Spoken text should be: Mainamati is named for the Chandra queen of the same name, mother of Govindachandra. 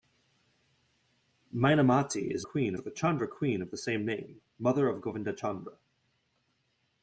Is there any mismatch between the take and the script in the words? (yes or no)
yes